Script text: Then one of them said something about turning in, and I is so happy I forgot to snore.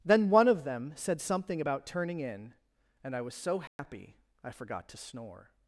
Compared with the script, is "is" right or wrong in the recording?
wrong